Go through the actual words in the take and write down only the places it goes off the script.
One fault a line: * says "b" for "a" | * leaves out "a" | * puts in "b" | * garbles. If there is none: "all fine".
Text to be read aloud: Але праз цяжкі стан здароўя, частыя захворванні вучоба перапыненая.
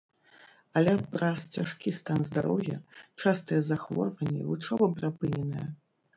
all fine